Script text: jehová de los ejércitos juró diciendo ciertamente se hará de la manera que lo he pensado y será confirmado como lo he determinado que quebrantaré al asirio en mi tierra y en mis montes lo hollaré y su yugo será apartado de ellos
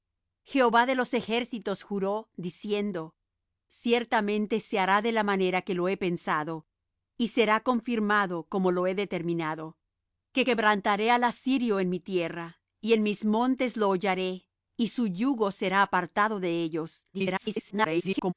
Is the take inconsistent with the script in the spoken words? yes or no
yes